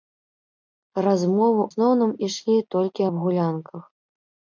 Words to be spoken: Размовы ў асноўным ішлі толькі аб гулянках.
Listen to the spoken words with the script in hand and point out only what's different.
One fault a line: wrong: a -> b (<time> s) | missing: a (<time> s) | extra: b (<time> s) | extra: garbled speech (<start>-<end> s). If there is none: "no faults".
missing: ў (1.6 s)